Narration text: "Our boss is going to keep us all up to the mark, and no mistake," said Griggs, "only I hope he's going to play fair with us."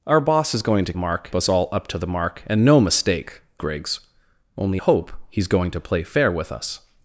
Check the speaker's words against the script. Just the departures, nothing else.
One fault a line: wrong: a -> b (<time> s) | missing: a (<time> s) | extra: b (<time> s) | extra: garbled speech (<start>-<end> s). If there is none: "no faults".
wrong: keep -> mark (0.9 s)
missing: said (3.4 s)
missing: I (4.8 s)